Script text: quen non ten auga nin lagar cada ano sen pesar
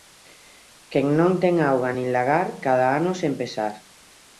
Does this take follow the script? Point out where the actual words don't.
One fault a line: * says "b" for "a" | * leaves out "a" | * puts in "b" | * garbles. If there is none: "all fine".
all fine